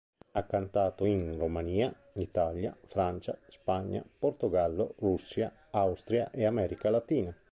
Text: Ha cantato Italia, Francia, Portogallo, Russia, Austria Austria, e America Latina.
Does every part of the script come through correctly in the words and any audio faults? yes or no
no